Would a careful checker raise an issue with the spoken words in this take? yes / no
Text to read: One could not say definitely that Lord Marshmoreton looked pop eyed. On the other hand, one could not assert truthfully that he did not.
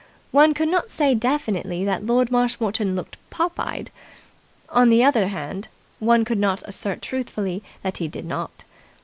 no